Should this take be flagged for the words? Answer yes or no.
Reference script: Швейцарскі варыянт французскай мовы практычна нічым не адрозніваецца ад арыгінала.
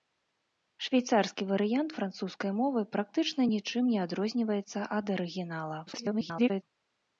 yes